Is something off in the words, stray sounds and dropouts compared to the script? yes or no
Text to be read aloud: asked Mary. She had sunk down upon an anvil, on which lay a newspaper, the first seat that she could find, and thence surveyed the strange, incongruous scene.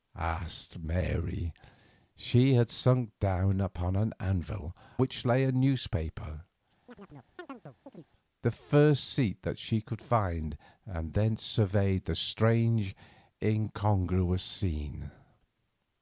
yes